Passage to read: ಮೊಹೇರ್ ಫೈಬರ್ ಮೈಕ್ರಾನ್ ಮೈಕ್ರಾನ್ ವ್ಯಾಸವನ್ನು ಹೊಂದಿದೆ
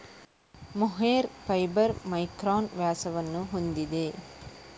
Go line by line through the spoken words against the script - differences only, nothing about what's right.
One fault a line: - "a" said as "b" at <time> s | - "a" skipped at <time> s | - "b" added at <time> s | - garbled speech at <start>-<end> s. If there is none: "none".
- "ಮೈಕ್ರಾನ್" skipped at 2.7 s